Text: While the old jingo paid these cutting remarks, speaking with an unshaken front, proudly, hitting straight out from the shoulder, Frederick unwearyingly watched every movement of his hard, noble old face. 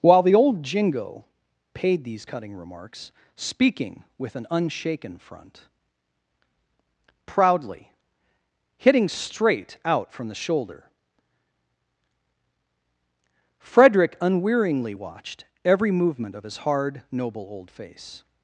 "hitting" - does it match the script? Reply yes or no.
yes